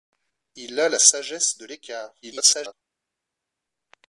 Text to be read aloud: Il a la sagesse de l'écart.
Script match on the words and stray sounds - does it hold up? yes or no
no